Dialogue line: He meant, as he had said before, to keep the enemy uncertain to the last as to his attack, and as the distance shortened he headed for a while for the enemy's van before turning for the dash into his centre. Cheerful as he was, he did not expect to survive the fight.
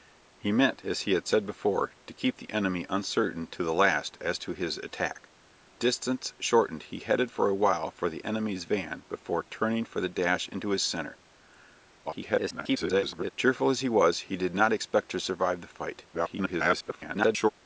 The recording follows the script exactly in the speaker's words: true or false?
false